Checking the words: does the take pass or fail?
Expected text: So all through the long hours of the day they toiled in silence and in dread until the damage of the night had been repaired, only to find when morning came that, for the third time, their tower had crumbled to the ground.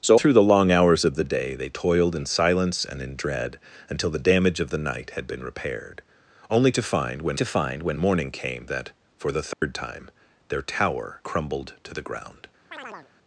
fail